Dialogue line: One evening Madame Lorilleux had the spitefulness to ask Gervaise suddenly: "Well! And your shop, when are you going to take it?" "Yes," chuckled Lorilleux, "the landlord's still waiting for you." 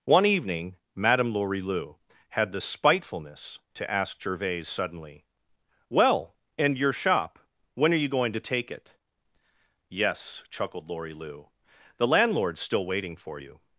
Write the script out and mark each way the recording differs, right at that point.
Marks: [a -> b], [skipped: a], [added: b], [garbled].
One evening Madame Lorilleux had the spitefulness to ask Gervaise suddenly: "Well! And your shop, when are you going to take it?" "Yes," chuckled Lorilleux, "the landlord's still waiting for you."